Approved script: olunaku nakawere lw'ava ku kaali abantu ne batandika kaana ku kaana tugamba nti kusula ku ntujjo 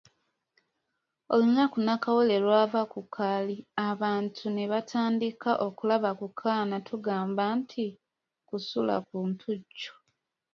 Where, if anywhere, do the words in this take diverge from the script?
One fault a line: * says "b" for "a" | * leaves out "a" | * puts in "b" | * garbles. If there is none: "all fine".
* says "okulaba" for "kaana"